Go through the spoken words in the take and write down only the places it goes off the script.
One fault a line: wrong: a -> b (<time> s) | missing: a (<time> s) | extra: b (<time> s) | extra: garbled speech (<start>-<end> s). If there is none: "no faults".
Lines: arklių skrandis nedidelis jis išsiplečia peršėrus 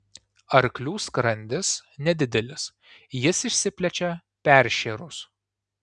no faults